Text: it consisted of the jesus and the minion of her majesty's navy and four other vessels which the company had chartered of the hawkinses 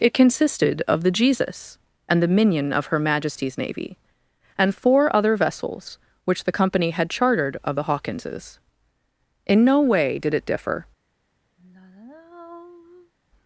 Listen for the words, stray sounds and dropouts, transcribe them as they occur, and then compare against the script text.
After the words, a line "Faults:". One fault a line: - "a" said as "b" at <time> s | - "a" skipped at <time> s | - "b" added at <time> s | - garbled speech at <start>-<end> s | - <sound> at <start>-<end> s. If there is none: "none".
it consisted of the jesus and the minion of her majesty's navy and four other vessels which the company had chartered of the hawkinses in no way did it differ
Faults:
- "in no way did it differ" added at 9.4 s
- sigh at 11.6-13.1 s